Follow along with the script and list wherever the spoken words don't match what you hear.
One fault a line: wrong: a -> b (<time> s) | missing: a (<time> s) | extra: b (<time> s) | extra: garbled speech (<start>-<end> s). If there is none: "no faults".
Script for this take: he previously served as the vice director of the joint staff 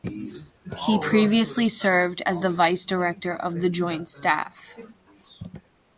no faults